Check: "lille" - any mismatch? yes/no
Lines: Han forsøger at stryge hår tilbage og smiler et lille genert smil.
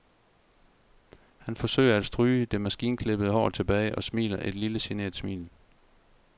no